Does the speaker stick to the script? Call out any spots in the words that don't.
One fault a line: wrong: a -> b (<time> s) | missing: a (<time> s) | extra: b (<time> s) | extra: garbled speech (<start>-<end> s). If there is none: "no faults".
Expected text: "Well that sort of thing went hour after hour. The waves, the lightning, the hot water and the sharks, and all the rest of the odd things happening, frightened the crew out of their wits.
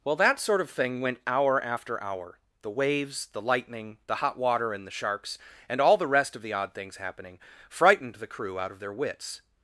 no faults